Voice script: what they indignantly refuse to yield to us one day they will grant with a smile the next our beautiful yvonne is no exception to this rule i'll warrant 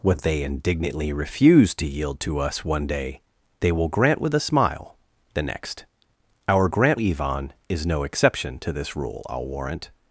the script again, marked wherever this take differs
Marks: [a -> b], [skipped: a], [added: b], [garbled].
what they indignantly refuse to yield to us one day they will grant with a smile the next our [beautiful -> grant] yvonne is no exception to this rule i'll warrant